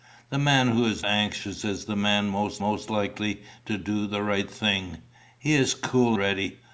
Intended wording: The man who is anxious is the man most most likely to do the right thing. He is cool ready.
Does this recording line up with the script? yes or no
yes